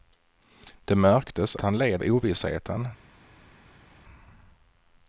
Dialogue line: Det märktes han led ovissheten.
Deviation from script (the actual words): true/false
false